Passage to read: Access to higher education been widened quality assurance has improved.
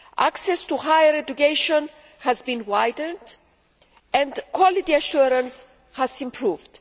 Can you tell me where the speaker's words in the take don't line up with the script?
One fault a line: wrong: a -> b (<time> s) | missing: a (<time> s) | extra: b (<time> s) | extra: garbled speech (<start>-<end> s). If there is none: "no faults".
extra: has (2.2 s)
extra: and (4.1 s)